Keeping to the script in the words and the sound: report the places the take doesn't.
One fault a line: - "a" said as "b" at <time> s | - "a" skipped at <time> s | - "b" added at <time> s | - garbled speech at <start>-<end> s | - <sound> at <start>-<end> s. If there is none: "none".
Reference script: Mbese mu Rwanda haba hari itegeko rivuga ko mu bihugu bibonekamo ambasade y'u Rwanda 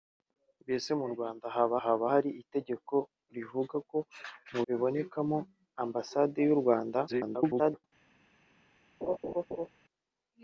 - "haba" added at 1.8 s
- "bihugu" skipped at 4.6 s
- garbled speech at 7.1-7.8 s
- laugh at 9.0-9.7 s